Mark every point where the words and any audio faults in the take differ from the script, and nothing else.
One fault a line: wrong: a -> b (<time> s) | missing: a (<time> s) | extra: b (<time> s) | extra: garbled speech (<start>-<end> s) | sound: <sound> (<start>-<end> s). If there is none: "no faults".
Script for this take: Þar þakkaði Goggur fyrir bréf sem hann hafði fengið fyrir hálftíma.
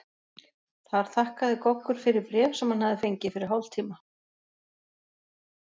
no faults